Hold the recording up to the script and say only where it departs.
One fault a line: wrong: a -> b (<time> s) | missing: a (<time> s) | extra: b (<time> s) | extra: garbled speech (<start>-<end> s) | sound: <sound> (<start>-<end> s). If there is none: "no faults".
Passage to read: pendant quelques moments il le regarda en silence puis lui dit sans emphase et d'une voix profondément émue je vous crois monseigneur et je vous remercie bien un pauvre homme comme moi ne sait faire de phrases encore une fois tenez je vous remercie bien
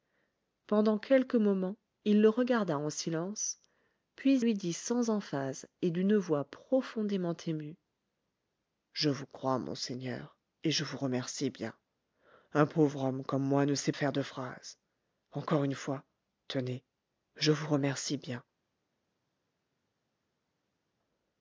no faults